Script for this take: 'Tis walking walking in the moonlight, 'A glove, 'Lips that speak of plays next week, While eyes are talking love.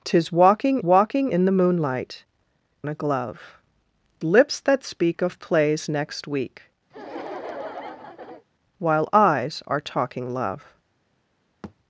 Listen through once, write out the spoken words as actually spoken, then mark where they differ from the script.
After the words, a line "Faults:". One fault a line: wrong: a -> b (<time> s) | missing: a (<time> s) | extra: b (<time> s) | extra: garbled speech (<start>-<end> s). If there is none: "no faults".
'Tis walking walking in the moonlight, 'A glove, 'Lips that speak of plays next week, While eyes are talking love.
Faults:
no faults